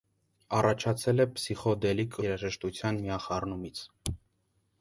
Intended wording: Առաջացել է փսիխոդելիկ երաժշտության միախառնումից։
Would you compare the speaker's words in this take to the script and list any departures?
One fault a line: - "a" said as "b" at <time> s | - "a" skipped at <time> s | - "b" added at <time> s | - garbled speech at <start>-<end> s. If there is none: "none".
none